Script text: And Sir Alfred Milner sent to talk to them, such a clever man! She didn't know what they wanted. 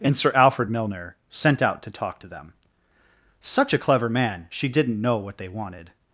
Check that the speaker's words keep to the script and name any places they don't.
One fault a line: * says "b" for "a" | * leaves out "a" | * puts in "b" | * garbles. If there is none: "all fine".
* puts in "out"